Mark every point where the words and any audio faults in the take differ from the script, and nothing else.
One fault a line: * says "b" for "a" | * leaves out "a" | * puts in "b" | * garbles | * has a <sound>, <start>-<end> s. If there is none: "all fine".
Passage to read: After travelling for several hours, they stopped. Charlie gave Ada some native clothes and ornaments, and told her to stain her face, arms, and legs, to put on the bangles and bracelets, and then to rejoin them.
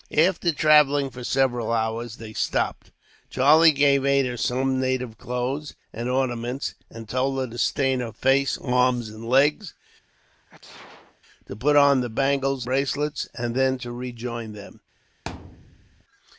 * has a sneeze, 10.1-11.2 s
* leaves out "and"
* has a thud, 15.3-16.0 s